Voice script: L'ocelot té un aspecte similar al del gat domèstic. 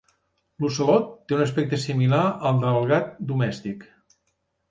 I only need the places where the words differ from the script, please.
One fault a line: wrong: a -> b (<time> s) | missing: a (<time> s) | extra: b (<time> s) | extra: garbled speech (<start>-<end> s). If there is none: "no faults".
no faults